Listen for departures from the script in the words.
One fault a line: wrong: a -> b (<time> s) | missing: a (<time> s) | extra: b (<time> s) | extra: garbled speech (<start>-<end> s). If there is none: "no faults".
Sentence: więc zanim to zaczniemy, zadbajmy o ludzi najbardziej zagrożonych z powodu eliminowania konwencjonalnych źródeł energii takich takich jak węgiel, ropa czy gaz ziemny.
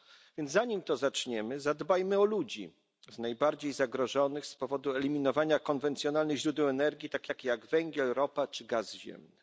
no faults